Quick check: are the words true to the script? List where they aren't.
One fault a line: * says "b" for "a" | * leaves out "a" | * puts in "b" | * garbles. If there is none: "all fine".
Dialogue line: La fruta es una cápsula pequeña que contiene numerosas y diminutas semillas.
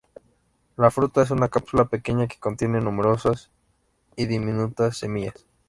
all fine